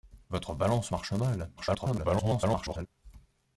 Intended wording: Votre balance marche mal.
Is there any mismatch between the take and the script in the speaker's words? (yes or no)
yes